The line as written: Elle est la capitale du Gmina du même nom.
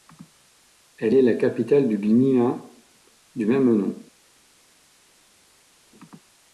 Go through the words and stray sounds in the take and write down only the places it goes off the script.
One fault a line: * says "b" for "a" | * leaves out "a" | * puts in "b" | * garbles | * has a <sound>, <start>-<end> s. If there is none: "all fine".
all fine